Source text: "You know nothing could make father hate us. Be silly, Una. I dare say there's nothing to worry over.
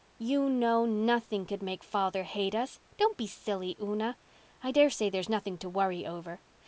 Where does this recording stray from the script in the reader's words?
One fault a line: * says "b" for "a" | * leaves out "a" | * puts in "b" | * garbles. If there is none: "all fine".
* puts in "Don't"